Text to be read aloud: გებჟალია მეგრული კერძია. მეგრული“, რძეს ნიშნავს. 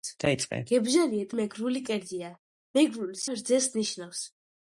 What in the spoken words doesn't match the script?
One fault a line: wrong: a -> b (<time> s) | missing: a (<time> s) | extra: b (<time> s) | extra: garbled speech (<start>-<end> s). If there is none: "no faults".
no faults